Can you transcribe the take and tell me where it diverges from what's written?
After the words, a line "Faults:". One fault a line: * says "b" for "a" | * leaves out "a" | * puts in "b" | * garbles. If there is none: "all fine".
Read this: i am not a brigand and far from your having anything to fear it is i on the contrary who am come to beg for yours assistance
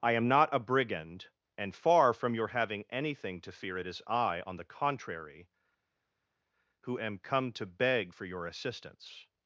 i am not a brigand and far from your having anything to fear it is i on the contrary who am come to beg for your assistance
Faults:
* says "your" for "yours"